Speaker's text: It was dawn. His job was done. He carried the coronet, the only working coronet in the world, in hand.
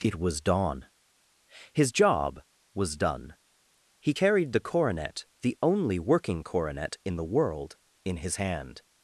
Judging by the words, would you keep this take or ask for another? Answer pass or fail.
fail